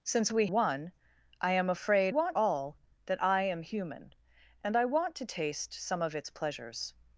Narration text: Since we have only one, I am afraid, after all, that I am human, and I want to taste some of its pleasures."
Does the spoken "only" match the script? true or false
false